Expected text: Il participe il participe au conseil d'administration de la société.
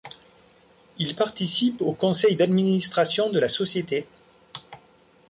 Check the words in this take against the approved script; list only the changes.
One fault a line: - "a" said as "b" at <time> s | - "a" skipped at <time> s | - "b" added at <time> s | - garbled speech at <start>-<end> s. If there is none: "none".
- "il participe" skipped at 1.8 s